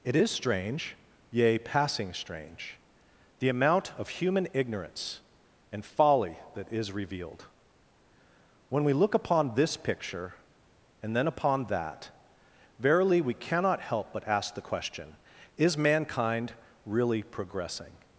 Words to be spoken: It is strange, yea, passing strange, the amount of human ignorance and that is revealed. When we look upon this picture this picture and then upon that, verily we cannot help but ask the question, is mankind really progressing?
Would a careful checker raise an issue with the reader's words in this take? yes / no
yes